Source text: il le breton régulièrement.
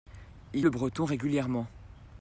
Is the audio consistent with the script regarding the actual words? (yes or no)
yes